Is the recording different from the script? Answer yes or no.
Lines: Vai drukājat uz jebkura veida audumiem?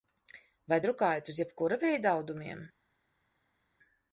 no